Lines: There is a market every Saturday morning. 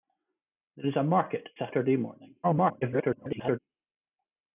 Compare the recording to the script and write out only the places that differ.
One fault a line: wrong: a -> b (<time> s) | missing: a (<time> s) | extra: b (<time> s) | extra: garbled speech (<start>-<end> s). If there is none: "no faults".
missing: every (1.5 s)
extra: garbled speech (2.4-3.6 s)